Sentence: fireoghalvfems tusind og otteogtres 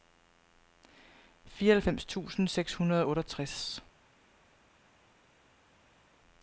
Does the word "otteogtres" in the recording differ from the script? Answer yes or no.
no